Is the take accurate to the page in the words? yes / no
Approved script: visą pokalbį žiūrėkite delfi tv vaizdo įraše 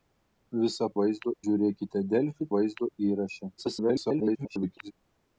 no